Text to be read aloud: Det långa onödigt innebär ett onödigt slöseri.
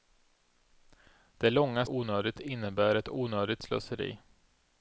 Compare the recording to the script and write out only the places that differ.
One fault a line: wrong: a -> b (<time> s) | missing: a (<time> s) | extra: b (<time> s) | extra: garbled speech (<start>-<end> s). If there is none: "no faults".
no faults